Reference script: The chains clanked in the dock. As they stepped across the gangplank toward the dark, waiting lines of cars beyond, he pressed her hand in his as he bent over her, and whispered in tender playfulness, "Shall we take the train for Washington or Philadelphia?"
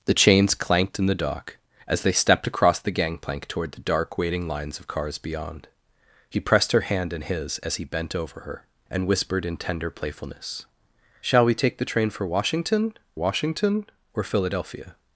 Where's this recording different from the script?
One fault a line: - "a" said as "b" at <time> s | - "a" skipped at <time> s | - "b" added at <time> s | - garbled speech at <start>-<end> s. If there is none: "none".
- "Washington" added at 13.2 s